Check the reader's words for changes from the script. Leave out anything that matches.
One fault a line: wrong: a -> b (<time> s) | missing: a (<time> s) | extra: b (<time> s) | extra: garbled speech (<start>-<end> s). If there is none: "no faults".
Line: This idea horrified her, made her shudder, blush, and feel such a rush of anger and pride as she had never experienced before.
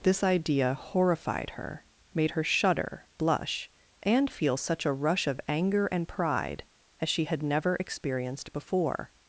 no faults